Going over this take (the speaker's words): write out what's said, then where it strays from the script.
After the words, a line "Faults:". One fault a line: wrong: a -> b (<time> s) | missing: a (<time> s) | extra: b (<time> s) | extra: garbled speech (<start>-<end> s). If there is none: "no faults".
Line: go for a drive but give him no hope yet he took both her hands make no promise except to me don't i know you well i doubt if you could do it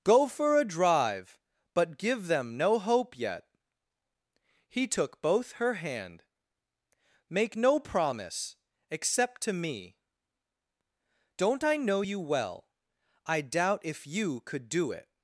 go for a drive but give them no hope yet he took both her hand make no promise except to me don't i know you well i doubt if you could do it
Faults:
wrong: him -> them (2.3 s)
wrong: hands -> hand (5.8 s)